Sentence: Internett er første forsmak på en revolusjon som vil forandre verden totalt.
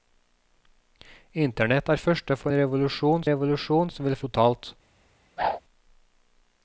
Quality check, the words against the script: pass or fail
fail